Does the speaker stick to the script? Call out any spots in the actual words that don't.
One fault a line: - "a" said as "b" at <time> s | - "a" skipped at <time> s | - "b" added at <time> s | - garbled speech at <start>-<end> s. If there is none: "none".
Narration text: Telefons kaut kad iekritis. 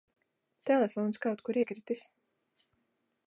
- "kad" said as "kur" at 1.5 s